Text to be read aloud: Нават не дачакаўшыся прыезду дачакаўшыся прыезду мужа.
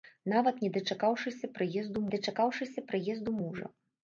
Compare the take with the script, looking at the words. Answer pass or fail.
pass